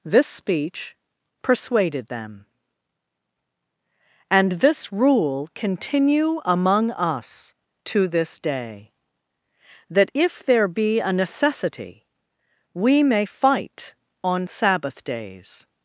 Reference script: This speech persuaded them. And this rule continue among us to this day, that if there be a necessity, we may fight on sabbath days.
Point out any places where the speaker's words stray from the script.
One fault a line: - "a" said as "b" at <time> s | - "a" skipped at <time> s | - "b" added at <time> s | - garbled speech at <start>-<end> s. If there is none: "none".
none